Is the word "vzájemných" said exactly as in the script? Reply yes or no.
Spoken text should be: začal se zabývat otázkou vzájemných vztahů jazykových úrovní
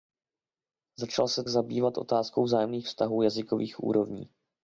yes